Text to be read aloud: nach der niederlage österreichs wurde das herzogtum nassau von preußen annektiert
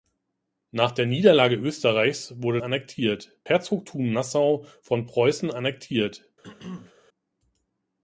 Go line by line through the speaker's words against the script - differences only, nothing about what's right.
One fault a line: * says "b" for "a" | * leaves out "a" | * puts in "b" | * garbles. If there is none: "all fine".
* says "annektiert" for "das"